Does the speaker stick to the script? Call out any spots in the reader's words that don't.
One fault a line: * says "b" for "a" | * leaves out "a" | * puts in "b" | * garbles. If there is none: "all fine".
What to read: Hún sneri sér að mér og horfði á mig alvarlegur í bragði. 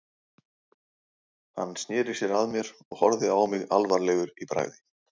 * says "Hann" for "Hún"